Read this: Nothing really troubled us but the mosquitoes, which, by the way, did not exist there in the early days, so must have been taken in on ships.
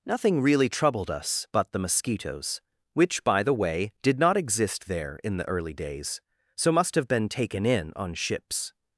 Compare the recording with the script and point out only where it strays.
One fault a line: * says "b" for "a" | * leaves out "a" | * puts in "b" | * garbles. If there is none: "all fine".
all fine